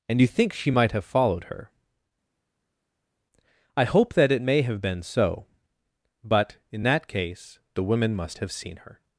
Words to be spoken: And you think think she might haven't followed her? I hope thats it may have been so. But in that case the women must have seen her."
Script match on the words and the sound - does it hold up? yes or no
no